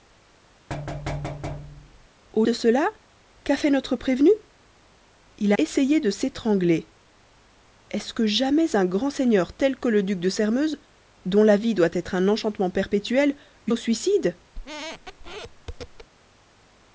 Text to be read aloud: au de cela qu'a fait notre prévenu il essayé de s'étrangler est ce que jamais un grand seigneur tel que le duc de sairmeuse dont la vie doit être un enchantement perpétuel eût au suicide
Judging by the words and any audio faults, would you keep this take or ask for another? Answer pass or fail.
fail